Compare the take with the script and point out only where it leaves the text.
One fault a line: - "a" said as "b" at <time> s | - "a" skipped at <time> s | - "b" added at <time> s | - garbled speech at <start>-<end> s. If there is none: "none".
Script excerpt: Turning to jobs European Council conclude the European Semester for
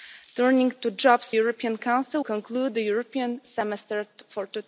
none